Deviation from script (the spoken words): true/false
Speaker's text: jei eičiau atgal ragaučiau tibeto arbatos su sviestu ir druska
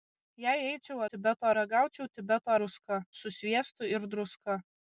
true